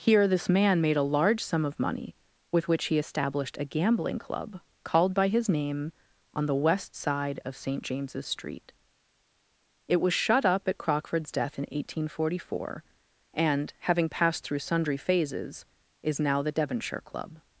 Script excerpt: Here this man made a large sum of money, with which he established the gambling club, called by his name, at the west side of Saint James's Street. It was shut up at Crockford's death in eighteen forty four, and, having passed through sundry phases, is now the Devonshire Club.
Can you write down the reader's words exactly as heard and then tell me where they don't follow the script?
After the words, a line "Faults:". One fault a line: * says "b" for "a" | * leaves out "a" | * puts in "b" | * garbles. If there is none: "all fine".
Here this man made a large sum of money, with which he established a gambling club, called by his name, on the west side of Saint James's Street. It was shut up at Crockford's death in eighteen forty four, and, having passed through sundry phases, is now the Devonshire Club.
Faults:
* says "a" for "the"
* says "on" for "at"